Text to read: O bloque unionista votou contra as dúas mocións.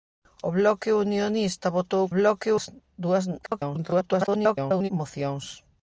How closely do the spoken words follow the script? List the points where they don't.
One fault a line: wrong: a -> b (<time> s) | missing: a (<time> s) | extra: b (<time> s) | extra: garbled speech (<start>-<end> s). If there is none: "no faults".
wrong: contra -> bloque (2.2 s)
extra: garbled speech (3.4-4.9 s)